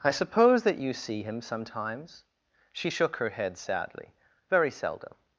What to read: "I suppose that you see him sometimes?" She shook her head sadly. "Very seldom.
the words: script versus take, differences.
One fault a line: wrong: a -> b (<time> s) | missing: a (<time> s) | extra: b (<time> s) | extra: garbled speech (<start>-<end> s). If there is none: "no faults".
no faults